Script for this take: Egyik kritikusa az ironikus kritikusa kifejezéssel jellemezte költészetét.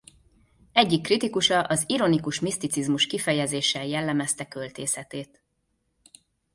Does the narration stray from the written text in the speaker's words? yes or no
yes